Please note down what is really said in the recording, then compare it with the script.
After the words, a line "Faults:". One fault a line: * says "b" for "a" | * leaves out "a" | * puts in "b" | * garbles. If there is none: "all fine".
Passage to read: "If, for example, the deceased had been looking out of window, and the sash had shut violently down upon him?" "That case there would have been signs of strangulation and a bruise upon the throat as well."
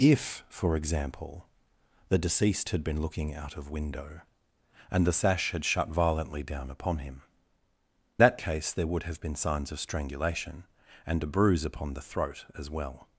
"If, for example, the deceased had been looking out of window, and the sash had shut violently down upon him?" "That case there would have been signs of strangulation and a bruise upon the throat as well."
Faults:
all fine